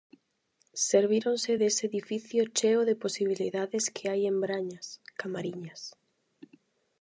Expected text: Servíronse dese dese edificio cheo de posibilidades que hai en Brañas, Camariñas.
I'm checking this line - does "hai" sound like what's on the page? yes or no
yes